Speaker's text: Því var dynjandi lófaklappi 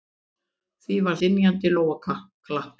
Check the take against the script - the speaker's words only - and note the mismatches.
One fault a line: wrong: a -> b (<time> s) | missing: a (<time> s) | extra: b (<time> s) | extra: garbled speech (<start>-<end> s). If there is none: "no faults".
no faults